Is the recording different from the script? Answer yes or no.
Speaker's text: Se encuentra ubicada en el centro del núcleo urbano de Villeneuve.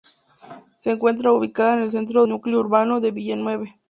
yes